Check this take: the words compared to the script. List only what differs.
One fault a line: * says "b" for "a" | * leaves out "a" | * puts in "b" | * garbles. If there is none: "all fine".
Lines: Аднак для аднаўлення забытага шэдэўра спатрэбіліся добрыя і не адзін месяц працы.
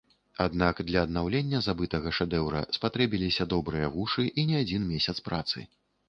* puts in "вушы"